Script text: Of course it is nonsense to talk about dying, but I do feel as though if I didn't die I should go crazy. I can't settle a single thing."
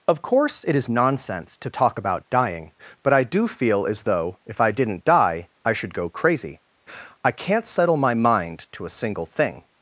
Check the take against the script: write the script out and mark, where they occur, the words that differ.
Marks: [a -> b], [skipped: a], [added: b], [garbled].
Of course it is nonsense to talk about dying, but I do feel as though if I didn't die I should go crazy. I can't settle [added: my mind to] a single thing."